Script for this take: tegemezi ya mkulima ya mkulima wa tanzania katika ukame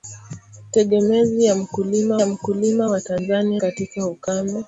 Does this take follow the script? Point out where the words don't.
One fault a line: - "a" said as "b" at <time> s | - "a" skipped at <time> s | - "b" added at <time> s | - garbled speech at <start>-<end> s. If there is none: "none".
none